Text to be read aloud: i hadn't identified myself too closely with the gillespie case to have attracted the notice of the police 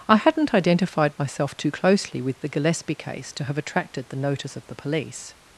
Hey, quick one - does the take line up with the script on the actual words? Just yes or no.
yes